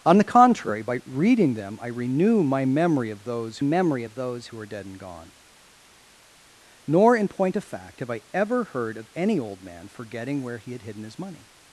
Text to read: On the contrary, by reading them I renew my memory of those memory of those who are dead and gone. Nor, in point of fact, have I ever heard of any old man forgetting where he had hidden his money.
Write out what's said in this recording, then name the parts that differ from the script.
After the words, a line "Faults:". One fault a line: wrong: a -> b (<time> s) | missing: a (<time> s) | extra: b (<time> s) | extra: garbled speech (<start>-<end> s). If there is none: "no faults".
On the contrary, by reading them I renew my memory of those memory of those who are dead and gone. Nor, in point of fact, have I ever heard of any old man forgetting where he had hidden his money.
Faults:
no faults